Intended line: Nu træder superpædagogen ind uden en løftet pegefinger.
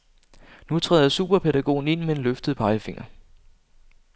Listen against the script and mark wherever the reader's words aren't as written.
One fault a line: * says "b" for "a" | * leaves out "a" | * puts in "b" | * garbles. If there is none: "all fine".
* says "med" for "uden"